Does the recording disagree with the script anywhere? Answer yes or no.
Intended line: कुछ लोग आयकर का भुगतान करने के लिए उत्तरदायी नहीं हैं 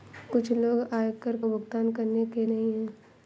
yes